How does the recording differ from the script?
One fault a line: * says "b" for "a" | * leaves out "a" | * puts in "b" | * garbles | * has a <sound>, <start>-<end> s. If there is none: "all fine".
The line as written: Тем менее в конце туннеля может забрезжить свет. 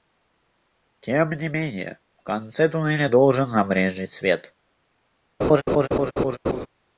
* puts in "не"
* says "должен" for "может"
* has a laugh, 5.4-6.7 s